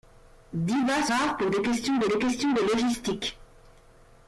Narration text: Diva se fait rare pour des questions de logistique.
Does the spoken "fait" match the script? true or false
false